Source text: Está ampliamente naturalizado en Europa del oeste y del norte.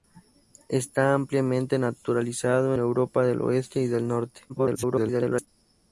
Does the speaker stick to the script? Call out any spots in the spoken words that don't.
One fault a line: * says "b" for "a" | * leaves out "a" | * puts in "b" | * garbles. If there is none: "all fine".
* leaves out "en"
* garbles